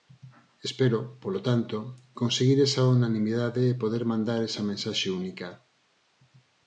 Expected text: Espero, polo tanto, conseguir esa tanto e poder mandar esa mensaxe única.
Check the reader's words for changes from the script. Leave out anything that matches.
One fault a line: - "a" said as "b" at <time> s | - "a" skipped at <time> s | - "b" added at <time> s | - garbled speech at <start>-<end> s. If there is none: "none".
- "tanto" said as "unanimidade" at 3.0 s